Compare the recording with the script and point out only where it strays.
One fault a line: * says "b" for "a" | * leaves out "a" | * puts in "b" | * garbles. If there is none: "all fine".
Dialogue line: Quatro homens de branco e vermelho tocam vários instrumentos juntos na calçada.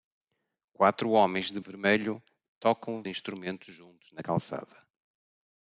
* leaves out "branco"
* leaves out "vários"